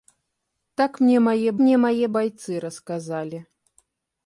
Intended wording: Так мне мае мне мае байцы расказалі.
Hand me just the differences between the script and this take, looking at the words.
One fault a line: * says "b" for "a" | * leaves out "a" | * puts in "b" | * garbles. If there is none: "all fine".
all fine